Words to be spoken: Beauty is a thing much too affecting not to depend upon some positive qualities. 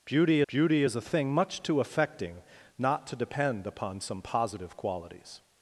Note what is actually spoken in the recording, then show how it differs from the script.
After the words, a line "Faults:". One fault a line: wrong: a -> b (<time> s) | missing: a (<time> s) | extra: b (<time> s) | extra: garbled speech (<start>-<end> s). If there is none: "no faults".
Beauty beauty is a thing much too affecting not to depend upon some positive qualities.
Faults:
extra: beauty (0.5 s)